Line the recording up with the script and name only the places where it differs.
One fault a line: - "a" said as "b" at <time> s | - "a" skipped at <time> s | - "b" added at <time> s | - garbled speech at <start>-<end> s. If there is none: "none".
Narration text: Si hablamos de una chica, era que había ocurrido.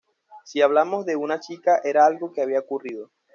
- "algo" added at 2.1 s